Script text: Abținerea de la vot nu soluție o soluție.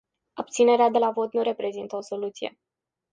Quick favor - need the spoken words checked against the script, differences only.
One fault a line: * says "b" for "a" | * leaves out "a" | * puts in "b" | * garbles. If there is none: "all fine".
* says "reprezintă" for "soluție"